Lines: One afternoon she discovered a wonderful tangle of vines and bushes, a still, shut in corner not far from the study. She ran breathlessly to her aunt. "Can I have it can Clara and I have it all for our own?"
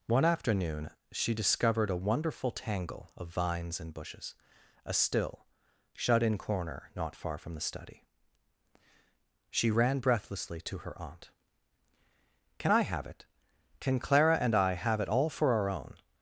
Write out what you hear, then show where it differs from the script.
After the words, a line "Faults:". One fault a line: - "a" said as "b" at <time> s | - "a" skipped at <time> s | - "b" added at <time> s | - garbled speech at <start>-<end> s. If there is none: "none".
One afternoon she discovered a wonderful tangle of vines and bushes, a still, shut in corner not far from the study. She ran breathlessly to her aunt. "Can I have it can Clara and I have it all for our own?"
Faults:
none